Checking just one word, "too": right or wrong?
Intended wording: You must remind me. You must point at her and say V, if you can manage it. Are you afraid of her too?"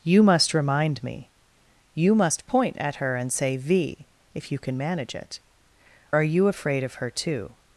right